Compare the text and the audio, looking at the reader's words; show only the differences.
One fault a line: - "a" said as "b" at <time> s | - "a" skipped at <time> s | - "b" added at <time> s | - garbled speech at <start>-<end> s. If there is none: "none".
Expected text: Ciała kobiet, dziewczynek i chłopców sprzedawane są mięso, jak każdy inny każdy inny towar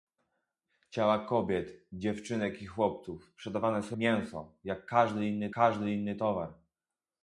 none